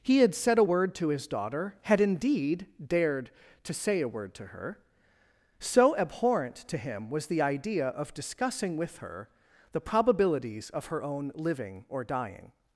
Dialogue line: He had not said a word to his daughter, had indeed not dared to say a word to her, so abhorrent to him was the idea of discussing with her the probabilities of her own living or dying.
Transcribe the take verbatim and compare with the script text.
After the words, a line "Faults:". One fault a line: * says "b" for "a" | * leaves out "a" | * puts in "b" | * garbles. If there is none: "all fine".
He had said a word to his daughter, had indeed dared to say a word to her, so abhorrent to him was the idea of discussing with her the probabilities of her own living or dying.
Faults:
* leaves out "not"
* leaves out "not"